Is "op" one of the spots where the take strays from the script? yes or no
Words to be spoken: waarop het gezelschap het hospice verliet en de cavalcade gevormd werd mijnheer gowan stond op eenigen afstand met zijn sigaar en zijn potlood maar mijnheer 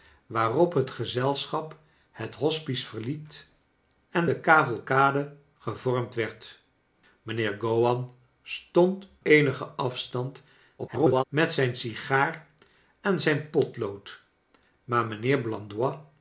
yes